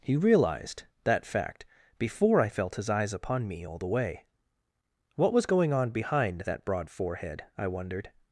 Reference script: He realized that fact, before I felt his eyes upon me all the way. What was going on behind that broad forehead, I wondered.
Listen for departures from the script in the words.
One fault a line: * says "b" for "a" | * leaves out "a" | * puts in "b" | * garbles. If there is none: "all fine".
all fine